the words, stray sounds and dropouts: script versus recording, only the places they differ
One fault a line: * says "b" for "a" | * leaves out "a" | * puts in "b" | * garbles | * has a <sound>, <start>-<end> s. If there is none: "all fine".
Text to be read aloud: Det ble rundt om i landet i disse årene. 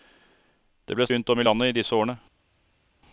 all fine